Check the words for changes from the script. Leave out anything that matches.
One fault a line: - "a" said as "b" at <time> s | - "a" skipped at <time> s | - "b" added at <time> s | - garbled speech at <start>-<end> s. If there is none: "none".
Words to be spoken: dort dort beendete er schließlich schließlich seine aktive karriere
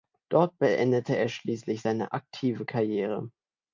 - "dort" skipped at 0.6 s
- "schließlich" skipped at 1.8 s